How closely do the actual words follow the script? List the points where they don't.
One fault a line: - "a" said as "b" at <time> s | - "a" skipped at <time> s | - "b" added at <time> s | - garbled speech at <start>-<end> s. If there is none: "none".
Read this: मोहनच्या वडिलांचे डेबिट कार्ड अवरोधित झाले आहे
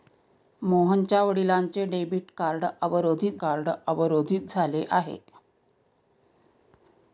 - "कार्ड अवरोधित" added at 3.4 s